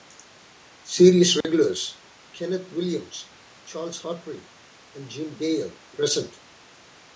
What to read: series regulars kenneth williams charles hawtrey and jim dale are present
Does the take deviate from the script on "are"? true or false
true